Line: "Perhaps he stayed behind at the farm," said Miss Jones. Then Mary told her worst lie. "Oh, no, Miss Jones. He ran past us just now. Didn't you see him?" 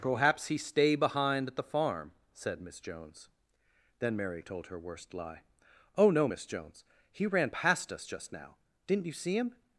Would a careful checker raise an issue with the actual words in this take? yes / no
yes